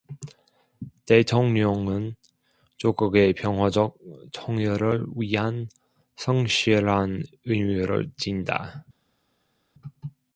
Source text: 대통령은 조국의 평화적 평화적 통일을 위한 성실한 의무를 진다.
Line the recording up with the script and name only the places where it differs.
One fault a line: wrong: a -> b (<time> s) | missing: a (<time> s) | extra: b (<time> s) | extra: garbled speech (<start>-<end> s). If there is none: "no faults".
missing: 평화적 (4.0 s)